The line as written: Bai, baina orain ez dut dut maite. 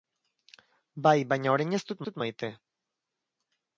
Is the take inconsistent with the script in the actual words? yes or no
no